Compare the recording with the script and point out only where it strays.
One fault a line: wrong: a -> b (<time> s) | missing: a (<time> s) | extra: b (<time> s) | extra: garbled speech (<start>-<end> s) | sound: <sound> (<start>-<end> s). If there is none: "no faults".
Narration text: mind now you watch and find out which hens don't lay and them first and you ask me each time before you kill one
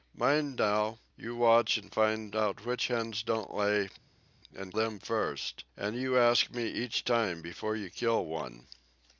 no faults